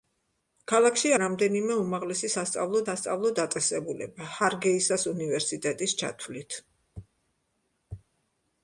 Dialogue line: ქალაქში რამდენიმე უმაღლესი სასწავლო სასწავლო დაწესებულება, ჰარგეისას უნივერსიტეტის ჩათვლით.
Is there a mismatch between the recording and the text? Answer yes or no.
no